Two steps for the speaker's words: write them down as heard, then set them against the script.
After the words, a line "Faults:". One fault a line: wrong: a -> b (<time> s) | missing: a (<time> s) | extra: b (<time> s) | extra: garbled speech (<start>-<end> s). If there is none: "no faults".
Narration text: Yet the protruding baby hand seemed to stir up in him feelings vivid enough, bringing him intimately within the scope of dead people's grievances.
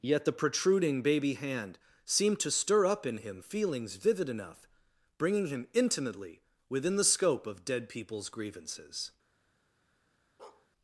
Yet the protruding baby hand seemed to stir up in him feelings vivid enough, bringing him intimately within the scope of dead people's grievances.
Faults:
no faults